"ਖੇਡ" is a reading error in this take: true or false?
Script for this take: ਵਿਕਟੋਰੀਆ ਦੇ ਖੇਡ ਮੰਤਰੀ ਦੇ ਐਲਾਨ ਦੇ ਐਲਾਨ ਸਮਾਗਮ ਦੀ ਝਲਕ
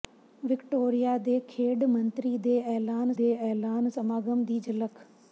false